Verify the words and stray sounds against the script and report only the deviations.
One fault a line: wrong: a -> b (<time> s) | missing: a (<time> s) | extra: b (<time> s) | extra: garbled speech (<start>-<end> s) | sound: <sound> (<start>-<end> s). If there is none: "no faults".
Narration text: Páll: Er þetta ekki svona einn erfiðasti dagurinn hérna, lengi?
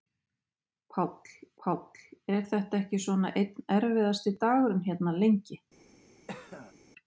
extra: páll (1.6 s)
sound: cough (6.3-6.7 s)